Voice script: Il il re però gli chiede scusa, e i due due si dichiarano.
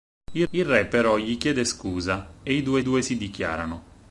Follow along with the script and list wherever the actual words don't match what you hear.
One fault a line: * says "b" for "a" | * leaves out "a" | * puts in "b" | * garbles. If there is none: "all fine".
all fine